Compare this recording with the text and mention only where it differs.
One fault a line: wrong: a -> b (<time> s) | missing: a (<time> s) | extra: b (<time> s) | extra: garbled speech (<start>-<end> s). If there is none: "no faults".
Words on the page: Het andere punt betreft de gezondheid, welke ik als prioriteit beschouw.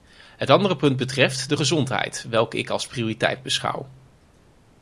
no faults